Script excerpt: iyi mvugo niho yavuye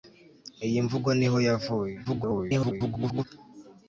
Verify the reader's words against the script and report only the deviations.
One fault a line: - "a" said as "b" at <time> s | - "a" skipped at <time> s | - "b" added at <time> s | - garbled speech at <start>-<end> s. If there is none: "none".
- garbled speech at 2.0-3.2 s